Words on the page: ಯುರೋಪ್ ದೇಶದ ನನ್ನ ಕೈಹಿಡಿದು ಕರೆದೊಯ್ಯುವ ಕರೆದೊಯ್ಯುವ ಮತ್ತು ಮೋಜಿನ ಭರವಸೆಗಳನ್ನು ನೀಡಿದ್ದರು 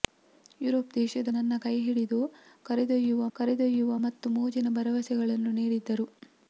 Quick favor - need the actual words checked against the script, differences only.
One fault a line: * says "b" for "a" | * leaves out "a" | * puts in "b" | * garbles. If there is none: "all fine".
all fine